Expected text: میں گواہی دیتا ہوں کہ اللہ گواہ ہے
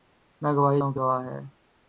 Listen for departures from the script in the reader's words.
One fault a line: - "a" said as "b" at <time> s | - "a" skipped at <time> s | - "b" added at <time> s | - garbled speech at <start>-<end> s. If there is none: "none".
- "دیتا" skipped at 0.8 s
- "اللہ" skipped at 1.0 s